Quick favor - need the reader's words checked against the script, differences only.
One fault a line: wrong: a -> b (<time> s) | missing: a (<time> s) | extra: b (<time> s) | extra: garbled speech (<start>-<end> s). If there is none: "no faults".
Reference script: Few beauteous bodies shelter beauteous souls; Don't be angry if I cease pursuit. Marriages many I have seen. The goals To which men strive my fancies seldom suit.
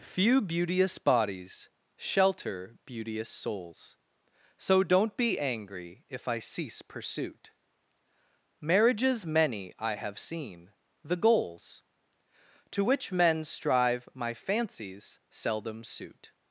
extra: So (4.6 s)